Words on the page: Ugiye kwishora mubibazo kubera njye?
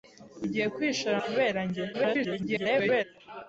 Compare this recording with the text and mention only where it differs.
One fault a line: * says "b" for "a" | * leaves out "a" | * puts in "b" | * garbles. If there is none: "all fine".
* leaves out "mubibazo"
* garbles